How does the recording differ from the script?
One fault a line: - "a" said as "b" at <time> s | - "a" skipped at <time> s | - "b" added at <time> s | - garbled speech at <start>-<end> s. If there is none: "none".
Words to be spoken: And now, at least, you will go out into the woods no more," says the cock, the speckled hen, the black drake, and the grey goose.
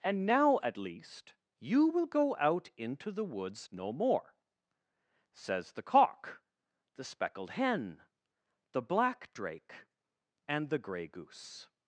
none